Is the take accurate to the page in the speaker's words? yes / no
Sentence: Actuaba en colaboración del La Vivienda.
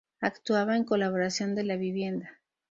yes